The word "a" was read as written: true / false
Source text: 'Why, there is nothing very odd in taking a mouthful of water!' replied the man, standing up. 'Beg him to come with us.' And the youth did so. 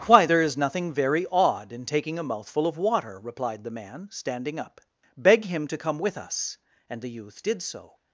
true